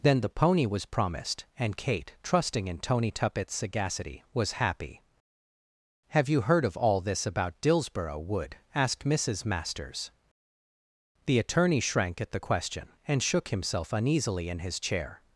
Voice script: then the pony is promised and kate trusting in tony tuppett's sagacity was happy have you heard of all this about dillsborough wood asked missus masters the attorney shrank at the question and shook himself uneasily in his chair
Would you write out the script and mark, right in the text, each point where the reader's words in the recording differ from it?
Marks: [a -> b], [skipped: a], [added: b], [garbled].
then the pony [is -> was] promised and kate trusting in tony tuppett's sagacity was happy have you heard of all this about dillsborough wood asked missus masters the attorney shrank at the question and shook himself uneasily in his chair